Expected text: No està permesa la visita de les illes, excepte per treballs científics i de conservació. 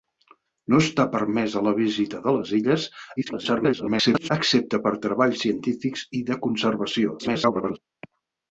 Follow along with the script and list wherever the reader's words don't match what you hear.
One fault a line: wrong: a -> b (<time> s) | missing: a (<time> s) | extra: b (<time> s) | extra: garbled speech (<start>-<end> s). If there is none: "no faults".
extra: garbled speech (3.2-4.3 s)
extra: garbled speech (7.2-7.8 s)